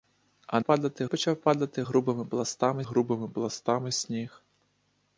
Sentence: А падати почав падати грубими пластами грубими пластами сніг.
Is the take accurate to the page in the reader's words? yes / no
yes